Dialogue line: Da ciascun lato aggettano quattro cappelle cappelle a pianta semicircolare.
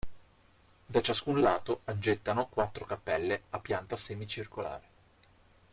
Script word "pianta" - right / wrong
right